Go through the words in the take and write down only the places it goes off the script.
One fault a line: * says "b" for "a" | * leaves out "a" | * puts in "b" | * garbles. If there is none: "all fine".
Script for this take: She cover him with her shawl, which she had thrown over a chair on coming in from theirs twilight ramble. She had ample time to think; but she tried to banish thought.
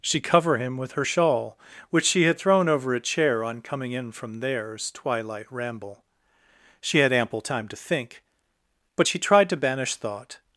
all fine